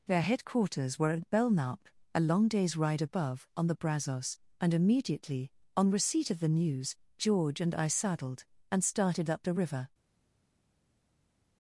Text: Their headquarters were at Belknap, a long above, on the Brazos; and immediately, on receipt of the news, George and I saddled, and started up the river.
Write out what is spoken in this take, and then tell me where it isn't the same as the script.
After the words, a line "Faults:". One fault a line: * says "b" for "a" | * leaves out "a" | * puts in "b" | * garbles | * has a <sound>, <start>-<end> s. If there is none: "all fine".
Their headquarters were at Belknap, a long day's ride above, on the Brazos; and immediately, on receipt of the news, George and I saddled, and started up the river.
Faults:
* puts in "day's ride"